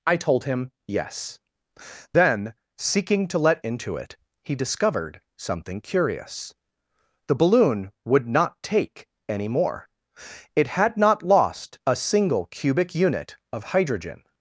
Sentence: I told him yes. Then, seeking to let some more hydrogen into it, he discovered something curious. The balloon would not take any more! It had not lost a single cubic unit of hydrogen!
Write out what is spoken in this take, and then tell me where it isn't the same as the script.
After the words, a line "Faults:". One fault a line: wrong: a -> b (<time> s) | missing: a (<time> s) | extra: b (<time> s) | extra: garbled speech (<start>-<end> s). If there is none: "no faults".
I told him yes. Then, seeking to let into it, he discovered something curious. The balloon would not take any more! It had not lost a single cubic unit of hydrogen!
Faults:
missing: some more hydrogen (3.6 s)